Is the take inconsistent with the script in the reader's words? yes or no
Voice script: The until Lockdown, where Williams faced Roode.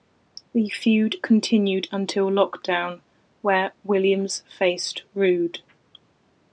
yes